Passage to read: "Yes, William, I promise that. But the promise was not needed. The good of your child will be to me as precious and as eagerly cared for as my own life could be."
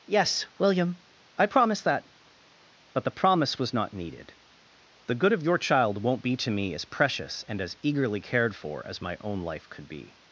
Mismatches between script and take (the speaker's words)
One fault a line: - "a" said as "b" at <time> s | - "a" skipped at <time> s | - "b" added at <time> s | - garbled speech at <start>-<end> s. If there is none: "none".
- "will" said as "won't" at 6.0 s